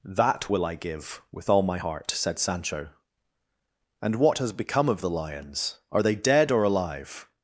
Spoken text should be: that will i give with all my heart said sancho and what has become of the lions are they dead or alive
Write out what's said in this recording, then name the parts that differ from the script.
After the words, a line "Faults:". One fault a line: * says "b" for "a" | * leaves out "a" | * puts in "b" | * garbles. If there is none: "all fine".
that will i give with all my heart said sancho and what has become of the lions are they dead or alive
Faults:
all fine